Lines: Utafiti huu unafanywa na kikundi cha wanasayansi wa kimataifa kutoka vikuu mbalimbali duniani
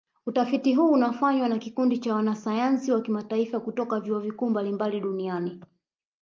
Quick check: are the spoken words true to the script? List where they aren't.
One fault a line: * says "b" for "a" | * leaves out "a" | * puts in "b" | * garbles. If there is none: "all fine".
* puts in "vyuo"